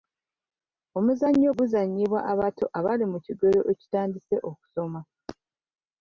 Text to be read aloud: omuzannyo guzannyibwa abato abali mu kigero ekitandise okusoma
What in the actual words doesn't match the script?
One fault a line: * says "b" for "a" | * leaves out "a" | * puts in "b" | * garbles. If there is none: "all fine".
all fine